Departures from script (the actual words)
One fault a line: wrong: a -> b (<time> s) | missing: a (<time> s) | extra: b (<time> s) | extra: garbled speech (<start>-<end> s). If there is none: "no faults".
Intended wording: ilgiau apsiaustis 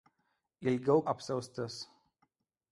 no faults